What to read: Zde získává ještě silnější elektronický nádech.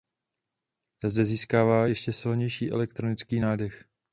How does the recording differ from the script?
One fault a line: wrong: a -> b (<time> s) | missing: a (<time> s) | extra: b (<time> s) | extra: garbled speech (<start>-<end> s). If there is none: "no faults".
no faults